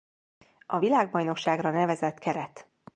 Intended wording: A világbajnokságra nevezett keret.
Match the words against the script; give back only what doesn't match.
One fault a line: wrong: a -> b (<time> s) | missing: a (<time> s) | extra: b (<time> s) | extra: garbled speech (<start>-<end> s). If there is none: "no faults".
no faults